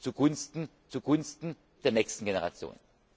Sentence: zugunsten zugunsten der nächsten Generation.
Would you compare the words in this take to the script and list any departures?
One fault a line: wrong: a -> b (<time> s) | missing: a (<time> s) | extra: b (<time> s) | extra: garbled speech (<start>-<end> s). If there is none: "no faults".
no faults